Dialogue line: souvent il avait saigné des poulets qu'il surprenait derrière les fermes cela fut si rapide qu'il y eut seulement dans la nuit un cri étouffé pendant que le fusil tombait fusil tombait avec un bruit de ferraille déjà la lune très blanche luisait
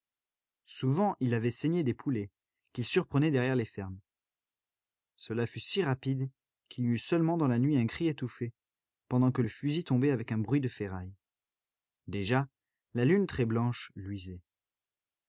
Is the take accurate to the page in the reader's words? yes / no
no